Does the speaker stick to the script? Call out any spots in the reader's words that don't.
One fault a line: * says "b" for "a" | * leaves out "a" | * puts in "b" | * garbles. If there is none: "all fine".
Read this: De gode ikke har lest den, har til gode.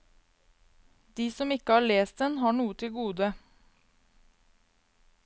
* says "som" for "gode"
* puts in "noe"